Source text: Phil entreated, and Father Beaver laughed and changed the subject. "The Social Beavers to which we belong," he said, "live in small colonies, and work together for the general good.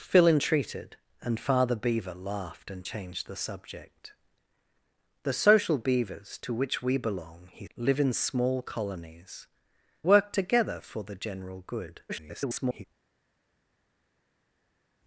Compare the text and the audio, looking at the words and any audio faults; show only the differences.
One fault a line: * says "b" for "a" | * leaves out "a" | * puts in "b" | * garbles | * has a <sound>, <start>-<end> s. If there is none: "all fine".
* leaves out "said"
* leaves out "and"
* garbles